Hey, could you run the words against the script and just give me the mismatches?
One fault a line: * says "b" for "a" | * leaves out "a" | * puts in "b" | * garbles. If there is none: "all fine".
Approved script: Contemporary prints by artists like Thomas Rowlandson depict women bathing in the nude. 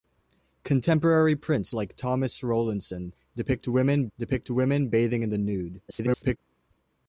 * leaves out "by artists"
* puts in "depict women"
* garbles